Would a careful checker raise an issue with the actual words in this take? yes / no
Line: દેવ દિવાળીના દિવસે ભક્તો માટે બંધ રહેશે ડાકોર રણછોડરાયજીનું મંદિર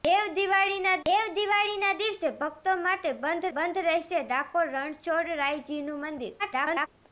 yes